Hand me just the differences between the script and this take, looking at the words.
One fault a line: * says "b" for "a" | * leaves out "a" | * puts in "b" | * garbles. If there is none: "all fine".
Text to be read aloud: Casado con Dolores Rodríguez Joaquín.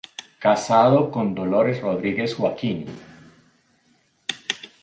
all fine